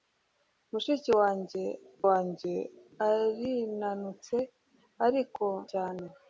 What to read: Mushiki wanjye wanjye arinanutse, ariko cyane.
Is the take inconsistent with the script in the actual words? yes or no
no